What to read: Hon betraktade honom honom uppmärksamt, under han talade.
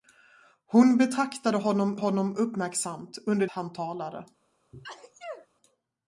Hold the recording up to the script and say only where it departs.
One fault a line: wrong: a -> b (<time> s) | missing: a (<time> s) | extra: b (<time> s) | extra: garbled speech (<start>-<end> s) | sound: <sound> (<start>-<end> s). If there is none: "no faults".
sound: sneeze (4.7-5.5 s)